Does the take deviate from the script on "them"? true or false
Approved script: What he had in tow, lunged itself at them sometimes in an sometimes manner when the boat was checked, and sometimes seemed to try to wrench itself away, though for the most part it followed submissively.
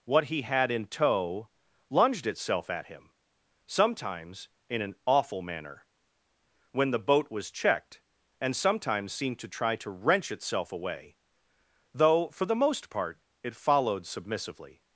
true